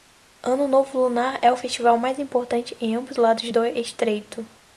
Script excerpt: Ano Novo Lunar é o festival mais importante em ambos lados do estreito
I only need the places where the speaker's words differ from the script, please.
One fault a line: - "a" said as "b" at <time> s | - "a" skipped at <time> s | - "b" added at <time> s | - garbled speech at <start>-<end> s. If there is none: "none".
none